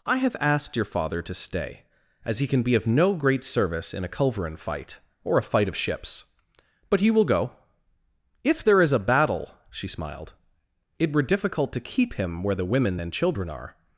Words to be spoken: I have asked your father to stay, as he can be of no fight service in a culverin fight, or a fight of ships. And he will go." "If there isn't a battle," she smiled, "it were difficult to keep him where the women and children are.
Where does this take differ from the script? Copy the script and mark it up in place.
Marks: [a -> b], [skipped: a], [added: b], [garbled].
I have asked your father to stay, as he can be of no [fight -> great] service in a culverin fight, or a fight of ships. [And -> But] he will go." "If there [isn't -> is] a battle," she smiled, "it were difficult to keep him where the women and children are.